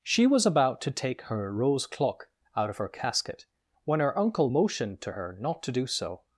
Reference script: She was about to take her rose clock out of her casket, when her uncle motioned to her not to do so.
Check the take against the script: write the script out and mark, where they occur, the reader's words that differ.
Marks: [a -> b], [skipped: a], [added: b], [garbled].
She was about to take her rose clock out of her casket, when her uncle motioned to her not to do so.